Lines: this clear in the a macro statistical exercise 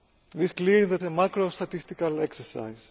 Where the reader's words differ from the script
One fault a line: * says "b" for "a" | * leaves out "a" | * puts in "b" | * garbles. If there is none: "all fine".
all fine